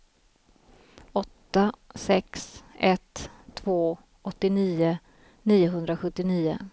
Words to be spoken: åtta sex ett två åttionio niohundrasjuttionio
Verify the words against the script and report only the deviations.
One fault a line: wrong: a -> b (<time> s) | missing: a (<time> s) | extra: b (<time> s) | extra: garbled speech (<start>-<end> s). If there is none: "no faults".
no faults